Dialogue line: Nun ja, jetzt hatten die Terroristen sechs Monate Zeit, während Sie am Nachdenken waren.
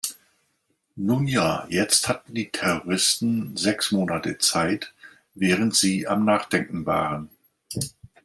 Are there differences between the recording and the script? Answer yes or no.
no